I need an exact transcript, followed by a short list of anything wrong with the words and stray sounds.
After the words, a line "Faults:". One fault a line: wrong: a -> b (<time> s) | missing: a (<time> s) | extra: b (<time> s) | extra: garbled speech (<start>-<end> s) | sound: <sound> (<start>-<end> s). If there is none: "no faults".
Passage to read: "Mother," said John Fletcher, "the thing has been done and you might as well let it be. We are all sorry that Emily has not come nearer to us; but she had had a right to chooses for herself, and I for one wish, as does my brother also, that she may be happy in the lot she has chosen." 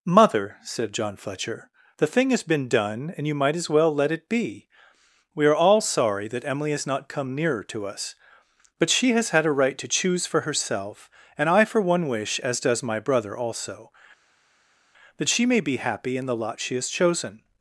"Mother," said John Fletcher, "the thing has been done and you might as well let it be. We are all sorry that Emily has not come nearer to us; but she has had a right to choose for herself, and I for one wish, as does my brother also, that she may be happy in the lot she has chosen."
Faults:
wrong: had -> has (9.1 s)
wrong: chooses -> choose (9.9 s)